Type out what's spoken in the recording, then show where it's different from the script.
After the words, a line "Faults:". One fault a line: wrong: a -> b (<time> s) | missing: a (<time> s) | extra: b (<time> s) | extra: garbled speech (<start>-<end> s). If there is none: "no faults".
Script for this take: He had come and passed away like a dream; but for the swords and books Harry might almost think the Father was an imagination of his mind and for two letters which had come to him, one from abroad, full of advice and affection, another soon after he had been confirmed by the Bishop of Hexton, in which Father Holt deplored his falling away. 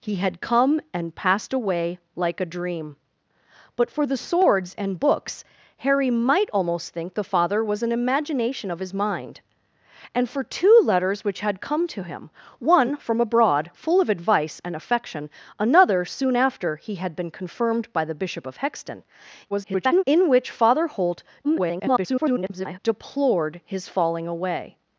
He had come and passed away like a dream; but for the swords and books Harry might almost think the Father was an imagination of his mind and for two letters which had come to him, one from abroad, full of advice and affection, another soon after he had been confirmed by the Bishop of Hexton, [garbled] in which Father Holt [garbled] deplored his falling away.
Faults:
extra: garbled speech (19.5-20.0 s)
extra: garbled speech (21.4-22.8 s)